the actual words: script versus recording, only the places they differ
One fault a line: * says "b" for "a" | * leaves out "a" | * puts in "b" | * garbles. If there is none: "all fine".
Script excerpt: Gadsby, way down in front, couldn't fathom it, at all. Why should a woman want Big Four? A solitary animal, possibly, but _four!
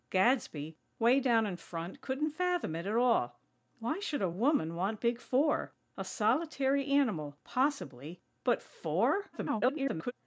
* garbles